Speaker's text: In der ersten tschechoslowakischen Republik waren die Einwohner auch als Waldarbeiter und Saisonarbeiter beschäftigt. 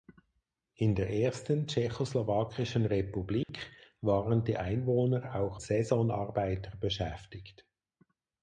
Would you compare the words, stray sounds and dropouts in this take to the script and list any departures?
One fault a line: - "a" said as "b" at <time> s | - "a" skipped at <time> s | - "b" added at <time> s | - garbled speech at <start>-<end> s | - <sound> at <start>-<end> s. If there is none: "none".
- dropout at 3.4-3.5 s
- "als Waldarbeiter und" skipped at 5.6 s